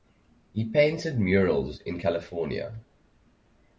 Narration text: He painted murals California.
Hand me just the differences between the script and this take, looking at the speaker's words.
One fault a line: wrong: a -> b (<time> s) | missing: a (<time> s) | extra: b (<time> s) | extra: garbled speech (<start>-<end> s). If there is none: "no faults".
extra: in (1.8 s)